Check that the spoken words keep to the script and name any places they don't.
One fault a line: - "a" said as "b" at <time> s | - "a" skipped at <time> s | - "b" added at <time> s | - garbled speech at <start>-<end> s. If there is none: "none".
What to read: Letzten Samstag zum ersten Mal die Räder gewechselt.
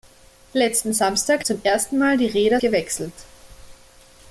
none